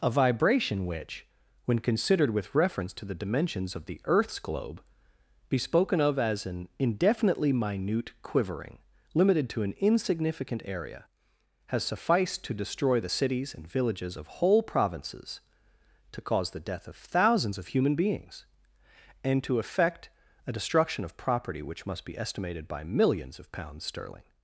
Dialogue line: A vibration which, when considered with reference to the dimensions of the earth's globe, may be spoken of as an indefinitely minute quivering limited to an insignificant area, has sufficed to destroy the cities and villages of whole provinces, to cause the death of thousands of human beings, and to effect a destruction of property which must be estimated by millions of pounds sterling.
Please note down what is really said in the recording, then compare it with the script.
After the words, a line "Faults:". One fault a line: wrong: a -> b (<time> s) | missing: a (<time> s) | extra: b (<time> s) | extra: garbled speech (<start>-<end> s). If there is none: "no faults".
A vibration which, when considered with reference to the dimensions of the earth's globe, be spoken of as an indefinitely minute quivering limited to an insignificant area, has sufficed to destroy the cities and villages of whole provinces, to cause the death of thousands of human beings, and to effect a destruction of property which must be estimated by millions of pounds sterling.
Faults:
missing: may (4.8 s)